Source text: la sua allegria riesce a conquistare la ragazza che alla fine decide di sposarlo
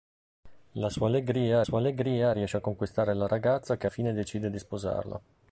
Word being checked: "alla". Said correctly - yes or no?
no